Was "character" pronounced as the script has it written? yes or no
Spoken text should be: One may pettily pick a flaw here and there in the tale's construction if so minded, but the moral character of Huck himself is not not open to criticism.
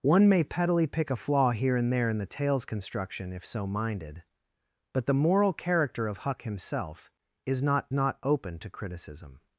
yes